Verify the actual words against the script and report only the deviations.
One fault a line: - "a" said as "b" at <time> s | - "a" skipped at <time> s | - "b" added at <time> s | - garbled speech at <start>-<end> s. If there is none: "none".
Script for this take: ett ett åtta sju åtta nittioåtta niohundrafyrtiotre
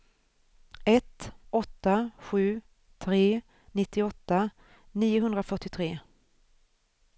- "ett" skipped at 1.3 s
- "åtta" said as "tre" at 3.0 s